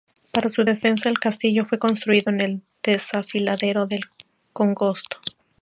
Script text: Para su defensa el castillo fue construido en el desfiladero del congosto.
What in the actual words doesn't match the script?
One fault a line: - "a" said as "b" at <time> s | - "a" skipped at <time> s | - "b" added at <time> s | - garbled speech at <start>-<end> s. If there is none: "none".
none